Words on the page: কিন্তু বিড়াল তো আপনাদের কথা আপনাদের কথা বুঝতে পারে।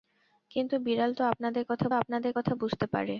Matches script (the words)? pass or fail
pass